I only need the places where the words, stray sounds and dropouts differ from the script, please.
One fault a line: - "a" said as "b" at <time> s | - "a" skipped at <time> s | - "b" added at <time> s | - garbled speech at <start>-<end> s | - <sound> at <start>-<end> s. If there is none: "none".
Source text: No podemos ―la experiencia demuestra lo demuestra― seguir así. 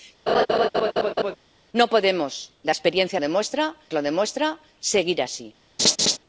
- laugh at 0.3-1.4 s
- laugh at 5.8-6.2 s